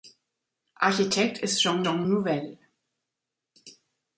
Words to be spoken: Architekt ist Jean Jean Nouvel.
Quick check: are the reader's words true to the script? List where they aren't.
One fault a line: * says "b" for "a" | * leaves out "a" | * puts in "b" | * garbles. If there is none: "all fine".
all fine